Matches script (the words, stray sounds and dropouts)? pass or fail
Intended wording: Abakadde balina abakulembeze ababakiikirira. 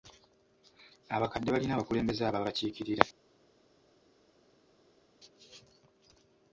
pass